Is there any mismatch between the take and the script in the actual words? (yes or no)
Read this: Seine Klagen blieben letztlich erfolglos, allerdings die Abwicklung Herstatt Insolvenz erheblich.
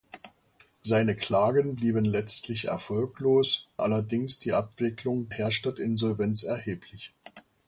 no